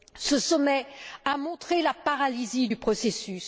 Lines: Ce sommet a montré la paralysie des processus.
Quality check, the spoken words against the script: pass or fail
fail